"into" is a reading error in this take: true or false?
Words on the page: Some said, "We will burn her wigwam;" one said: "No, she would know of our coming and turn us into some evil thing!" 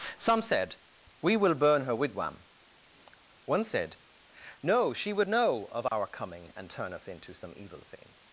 false